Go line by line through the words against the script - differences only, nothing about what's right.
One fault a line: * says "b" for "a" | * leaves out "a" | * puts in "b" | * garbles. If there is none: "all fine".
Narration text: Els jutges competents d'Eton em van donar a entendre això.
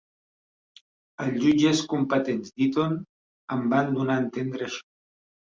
all fine